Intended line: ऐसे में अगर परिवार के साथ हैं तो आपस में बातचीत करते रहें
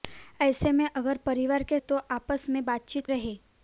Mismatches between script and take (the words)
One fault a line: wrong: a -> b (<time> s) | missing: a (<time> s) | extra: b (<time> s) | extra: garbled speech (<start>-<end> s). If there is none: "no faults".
missing: साथ हैं (1.8 s)
missing: करते (3.1 s)